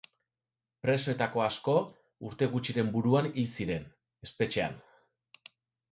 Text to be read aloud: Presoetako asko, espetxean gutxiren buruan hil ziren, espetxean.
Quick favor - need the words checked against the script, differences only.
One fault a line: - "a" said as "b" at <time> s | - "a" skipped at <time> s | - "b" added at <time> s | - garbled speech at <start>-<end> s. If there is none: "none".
- "espetxean" said as "urte" at 2.3 s